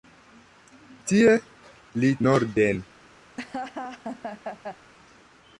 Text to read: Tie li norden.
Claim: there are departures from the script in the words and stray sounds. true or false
true